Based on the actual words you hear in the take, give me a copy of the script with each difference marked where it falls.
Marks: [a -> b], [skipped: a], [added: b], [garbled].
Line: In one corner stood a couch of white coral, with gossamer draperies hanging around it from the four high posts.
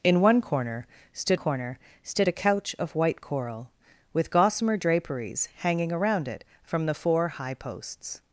In one corner stood [added: corner stood] a couch of white coral, with gossamer draperies hanging around it from the four high posts.